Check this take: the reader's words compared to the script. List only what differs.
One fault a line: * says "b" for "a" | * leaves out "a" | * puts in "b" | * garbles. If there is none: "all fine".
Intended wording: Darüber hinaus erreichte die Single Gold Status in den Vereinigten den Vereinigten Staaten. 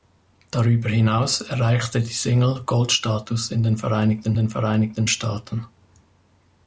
all fine